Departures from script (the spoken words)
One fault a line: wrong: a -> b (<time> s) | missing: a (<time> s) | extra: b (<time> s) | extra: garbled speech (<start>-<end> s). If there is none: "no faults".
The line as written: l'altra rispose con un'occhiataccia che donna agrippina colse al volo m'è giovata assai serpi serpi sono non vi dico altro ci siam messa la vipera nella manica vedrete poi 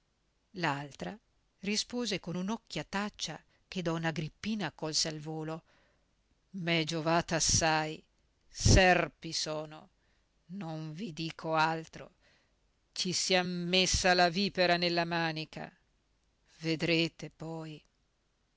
missing: serpi (9.3 s)